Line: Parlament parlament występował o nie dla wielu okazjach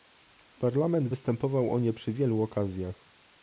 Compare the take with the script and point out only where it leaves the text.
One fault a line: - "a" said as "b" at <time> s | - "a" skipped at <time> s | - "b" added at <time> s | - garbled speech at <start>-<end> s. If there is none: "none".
- "parlament" skipped at 1.1 s
- "dla" said as "przy" at 1.9 s